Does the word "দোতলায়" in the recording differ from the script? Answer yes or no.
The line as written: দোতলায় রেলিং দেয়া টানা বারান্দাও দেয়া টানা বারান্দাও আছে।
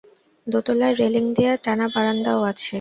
no